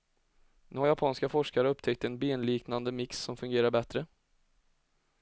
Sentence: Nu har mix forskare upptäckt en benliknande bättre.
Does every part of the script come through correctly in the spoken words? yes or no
no